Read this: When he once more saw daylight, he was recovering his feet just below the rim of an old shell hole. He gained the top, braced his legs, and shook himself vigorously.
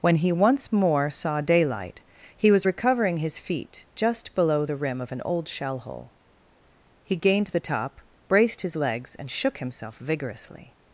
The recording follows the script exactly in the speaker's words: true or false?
true